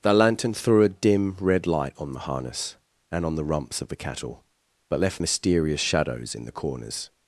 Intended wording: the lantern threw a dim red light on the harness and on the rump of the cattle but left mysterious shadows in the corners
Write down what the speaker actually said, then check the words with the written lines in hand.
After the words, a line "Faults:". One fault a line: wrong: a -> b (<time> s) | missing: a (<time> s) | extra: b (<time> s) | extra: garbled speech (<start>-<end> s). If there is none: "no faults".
the lantern threw a dim red light on the harness and on the rumps of the cattle but left mysterious shadows in the corners
Faults:
wrong: rump -> rumps (3.4 s)